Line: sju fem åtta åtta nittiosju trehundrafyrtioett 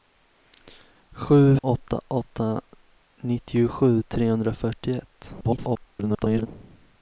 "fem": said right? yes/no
no